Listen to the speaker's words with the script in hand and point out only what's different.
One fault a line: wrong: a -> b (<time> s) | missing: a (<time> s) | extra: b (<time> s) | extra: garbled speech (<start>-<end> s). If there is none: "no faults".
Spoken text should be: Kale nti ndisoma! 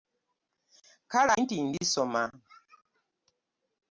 no faults